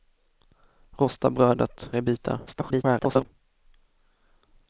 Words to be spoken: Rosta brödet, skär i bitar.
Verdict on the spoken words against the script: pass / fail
fail